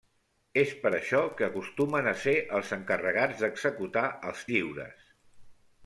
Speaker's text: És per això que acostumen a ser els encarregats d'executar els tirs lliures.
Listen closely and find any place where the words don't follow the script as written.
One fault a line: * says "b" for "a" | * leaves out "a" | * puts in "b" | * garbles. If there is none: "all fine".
* leaves out "tirs"